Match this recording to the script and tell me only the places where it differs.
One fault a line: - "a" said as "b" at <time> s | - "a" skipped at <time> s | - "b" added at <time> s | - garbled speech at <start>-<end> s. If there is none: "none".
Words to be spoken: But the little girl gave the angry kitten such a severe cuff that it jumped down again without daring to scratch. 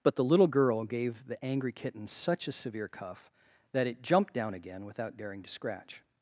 none